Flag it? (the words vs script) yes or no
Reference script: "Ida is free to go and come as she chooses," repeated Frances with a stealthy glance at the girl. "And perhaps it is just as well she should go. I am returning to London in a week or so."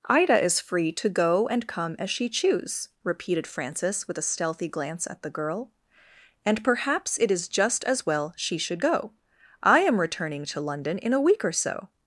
yes